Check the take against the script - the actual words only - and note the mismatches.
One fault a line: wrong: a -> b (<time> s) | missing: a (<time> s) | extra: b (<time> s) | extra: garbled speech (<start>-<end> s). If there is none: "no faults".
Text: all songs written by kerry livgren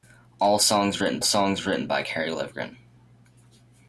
extra: songs written (1.2 s)